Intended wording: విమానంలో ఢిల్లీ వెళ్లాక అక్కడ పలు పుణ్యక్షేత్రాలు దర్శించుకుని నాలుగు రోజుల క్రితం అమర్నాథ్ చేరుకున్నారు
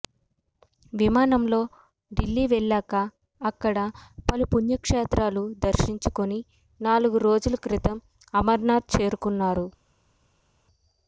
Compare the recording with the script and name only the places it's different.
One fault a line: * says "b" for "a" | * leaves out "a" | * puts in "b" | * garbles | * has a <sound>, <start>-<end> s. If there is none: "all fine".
all fine